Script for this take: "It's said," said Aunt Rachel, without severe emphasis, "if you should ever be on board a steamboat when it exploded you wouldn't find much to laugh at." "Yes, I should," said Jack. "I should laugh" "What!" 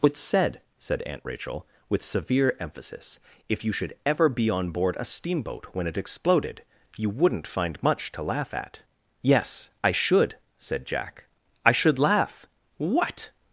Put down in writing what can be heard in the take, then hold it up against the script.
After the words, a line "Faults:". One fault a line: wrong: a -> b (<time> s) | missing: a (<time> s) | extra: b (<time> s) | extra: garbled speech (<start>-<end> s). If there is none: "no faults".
"It's said," said Aunt Rachel, with severe emphasis, "if you should ever be on board a steamboat when it exploded you wouldn't find much to laugh at." "Yes, I should," said Jack. "I should laugh" "What!"
Faults:
wrong: without -> with (1.9 s)